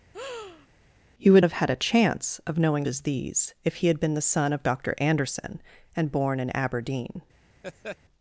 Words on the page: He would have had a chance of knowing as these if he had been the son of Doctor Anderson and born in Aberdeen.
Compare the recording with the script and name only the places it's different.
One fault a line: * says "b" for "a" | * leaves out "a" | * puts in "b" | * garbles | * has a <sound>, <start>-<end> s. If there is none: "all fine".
* has a breath, 0.1-0.7 s
* has a laugh, 7.6-8.0 s